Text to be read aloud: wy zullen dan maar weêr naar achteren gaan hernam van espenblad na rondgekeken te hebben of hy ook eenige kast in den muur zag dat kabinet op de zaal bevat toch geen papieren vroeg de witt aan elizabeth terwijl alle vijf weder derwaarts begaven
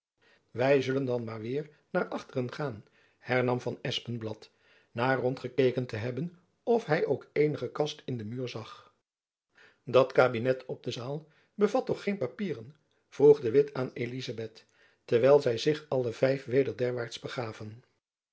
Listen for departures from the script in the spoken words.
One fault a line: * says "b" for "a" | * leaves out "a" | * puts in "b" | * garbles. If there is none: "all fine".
* puts in "zy zich"